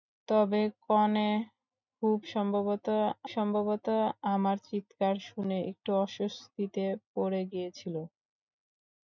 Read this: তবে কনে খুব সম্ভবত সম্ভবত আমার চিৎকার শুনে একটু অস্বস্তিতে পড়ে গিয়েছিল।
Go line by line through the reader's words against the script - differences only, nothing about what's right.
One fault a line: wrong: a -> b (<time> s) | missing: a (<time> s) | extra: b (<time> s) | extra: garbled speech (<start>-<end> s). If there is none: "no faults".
no faults